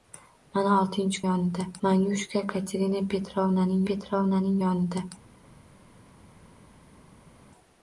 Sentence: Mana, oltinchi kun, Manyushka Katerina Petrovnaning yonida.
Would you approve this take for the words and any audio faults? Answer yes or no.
no